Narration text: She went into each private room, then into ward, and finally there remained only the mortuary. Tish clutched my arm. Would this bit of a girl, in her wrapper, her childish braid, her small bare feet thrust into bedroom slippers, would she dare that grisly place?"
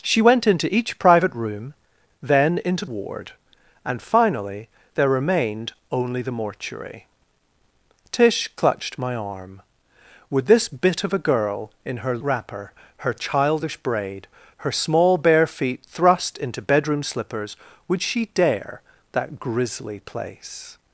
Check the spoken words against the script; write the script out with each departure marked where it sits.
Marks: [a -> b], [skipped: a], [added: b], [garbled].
She went into each private room, then into ward, and finally there remained only the mortuary. Tish clutched my arm. Would this bit of a girl, in her wrapper, her childish braid, her small bare feet thrust into bedroom slippers, would she dare that grisly place?"